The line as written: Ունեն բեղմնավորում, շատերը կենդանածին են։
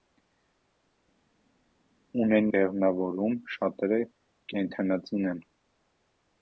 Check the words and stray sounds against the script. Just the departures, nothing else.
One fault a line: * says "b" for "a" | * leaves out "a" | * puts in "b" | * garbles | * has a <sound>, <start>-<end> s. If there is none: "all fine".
all fine